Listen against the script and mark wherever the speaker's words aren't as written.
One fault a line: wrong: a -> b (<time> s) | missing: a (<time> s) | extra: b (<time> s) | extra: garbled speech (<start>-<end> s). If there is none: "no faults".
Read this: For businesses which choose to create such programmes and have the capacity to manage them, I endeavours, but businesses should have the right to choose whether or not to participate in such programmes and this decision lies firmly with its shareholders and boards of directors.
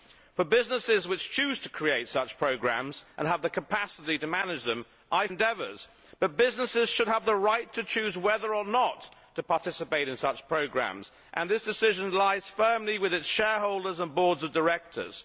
no faults